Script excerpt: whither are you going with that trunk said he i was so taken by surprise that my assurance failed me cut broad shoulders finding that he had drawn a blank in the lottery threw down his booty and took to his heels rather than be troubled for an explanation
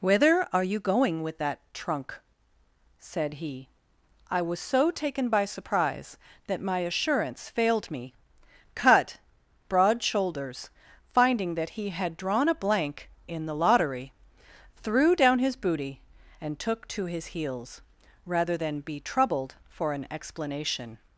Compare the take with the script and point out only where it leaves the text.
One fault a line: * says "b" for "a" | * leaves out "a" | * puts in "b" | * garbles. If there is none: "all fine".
all fine